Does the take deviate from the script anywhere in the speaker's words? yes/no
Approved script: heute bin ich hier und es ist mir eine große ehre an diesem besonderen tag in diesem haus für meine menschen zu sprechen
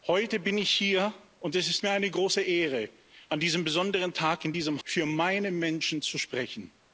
yes